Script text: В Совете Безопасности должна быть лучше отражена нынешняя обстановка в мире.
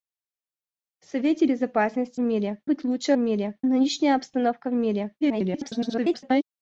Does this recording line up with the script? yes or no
no